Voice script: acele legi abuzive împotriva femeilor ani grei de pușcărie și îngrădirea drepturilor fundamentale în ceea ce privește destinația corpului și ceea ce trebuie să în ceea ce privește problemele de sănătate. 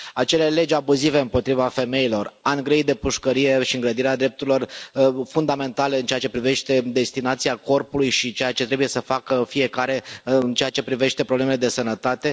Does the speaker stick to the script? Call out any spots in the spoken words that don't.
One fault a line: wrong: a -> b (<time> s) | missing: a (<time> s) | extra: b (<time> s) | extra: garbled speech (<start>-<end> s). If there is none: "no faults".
extra: facă fiecare (9.0 s)